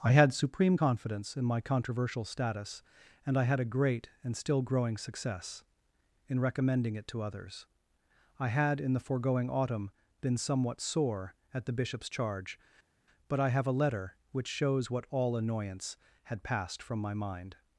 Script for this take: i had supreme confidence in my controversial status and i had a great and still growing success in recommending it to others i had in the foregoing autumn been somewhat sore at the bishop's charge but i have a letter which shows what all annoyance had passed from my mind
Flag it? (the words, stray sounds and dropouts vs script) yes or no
no